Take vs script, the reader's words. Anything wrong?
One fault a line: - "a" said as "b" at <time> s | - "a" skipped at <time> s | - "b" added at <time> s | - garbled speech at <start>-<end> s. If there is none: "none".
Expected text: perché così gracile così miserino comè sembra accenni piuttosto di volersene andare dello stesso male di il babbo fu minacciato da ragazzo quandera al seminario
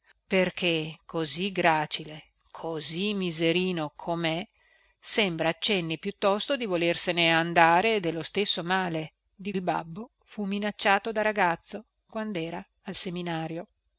none